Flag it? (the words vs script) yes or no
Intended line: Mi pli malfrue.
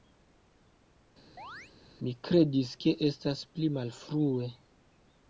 yes